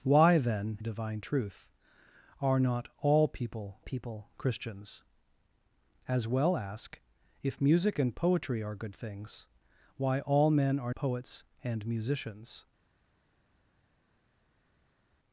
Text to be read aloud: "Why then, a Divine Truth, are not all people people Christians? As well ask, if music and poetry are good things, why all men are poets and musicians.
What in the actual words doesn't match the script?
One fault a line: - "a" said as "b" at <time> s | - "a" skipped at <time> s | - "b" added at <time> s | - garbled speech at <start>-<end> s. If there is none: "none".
none